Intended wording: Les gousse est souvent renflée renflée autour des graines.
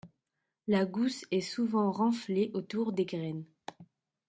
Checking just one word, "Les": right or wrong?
wrong